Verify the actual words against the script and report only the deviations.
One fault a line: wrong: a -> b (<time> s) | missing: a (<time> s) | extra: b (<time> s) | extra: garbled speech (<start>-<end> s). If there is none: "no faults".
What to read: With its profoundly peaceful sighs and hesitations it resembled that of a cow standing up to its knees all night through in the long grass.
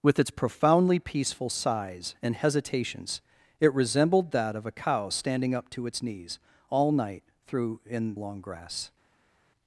missing: the (8.1 s)